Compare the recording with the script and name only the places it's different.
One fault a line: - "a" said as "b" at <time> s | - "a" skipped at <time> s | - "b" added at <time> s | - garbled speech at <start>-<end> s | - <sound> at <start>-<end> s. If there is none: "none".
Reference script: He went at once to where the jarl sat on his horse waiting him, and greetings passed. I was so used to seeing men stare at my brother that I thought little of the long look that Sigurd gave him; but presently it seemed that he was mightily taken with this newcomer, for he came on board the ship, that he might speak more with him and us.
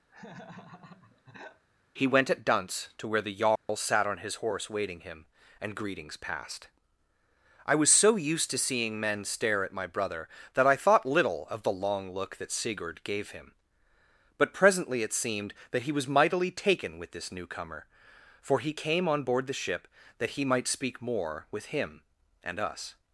- laugh at 0.1-1.6 s
- "once" said as "dunce" at 2.4 s
- dropout at 3.6-3.7 s